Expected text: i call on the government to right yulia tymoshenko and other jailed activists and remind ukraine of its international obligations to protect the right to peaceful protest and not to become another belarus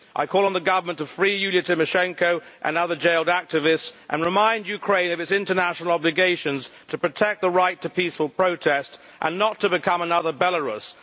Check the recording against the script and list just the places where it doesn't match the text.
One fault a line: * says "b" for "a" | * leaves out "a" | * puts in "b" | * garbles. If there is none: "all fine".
* says "free" for "right"